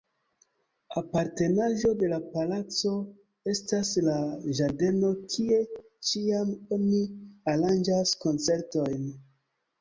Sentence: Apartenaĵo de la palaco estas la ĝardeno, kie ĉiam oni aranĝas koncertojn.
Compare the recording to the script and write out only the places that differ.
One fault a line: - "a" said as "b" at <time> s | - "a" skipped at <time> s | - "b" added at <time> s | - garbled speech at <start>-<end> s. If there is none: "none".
none